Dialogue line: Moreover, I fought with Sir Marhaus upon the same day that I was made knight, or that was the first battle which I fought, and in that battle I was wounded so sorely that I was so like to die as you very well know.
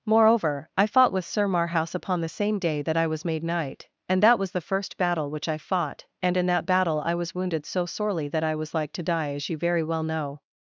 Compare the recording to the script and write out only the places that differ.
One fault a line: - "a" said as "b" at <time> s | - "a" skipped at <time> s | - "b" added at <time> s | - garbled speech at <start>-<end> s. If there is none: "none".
- "or" said as "and" at 4.1 s
- "so" skipped at 8.7 s